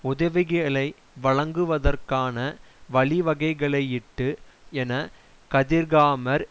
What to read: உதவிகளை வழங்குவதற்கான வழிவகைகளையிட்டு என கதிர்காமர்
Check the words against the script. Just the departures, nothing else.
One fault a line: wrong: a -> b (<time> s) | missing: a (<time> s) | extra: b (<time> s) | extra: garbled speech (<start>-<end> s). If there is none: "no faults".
no faults